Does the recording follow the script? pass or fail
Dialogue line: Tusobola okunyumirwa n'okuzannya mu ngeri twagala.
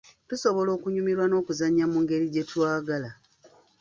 fail